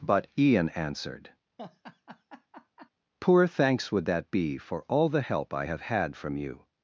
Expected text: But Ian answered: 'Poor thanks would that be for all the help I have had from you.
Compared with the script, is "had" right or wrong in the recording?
right